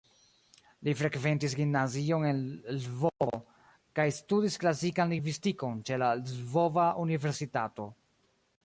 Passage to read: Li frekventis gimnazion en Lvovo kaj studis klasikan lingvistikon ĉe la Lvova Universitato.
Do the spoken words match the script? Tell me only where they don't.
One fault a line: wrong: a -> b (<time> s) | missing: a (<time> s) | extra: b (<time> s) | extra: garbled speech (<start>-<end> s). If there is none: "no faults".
no faults